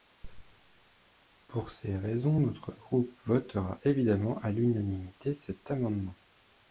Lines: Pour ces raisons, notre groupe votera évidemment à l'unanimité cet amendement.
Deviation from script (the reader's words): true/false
false